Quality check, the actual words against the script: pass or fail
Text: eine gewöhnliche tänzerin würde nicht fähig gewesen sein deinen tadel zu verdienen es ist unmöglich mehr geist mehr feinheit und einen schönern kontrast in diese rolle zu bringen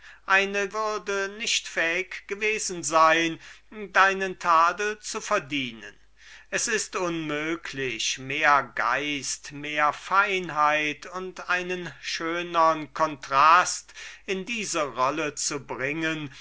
fail